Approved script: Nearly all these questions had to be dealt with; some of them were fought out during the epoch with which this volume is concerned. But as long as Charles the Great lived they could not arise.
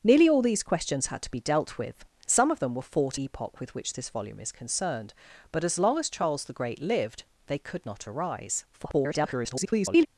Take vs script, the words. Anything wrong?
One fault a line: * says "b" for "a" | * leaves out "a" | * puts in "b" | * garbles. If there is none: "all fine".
* leaves out "out during the"
* garbles